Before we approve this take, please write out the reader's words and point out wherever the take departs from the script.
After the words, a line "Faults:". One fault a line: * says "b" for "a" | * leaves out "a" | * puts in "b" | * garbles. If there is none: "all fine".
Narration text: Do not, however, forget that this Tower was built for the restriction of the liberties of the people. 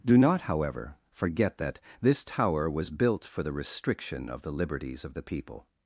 Do not, however, forget that this Tower was built for the restriction of the liberties of the people.
Faults:
all fine